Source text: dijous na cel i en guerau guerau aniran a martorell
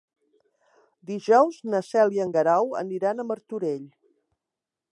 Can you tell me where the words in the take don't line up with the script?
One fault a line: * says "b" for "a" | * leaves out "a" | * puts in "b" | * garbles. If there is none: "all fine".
* leaves out "guerau"